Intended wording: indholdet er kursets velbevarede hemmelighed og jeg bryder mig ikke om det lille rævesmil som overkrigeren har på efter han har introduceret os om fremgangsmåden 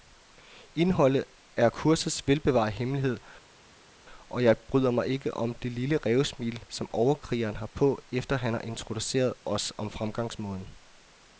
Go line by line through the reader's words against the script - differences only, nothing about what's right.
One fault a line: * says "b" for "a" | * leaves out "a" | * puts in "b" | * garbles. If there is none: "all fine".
all fine